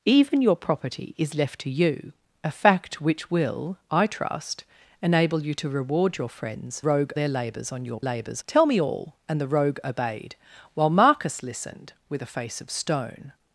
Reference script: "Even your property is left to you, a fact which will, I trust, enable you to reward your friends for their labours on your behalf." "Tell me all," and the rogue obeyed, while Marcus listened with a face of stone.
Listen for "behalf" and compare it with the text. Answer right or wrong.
wrong